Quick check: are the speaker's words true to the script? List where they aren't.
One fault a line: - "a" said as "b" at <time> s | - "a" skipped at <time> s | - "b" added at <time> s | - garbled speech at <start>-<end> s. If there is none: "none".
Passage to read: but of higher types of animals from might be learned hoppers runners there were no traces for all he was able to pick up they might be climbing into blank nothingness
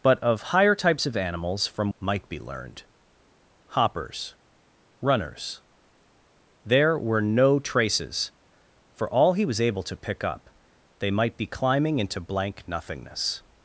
none